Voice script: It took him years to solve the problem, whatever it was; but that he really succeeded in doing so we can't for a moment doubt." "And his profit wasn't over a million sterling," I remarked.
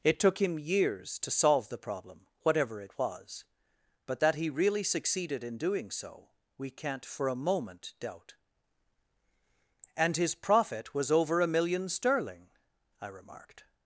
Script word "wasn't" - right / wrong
wrong